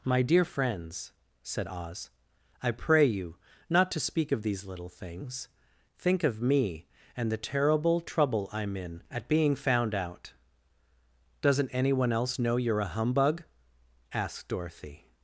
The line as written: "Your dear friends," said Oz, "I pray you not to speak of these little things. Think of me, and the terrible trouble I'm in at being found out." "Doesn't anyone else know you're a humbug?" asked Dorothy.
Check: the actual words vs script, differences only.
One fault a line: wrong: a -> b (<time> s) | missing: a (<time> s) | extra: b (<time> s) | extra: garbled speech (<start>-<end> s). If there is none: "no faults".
wrong: Your -> My (0.0 s)